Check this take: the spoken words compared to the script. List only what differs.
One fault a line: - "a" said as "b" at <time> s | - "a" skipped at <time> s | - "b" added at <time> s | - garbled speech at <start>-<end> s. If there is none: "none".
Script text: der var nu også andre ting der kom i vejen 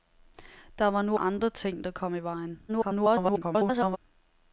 - "også" skipped at 1.2 s
- garbled speech at 2.7-4.0 s